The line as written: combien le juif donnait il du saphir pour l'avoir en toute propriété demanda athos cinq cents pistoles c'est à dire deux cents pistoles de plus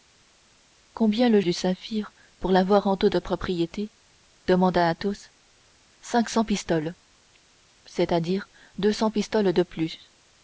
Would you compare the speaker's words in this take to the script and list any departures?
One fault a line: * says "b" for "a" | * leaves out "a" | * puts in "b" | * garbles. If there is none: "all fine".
* leaves out "juif donnait il"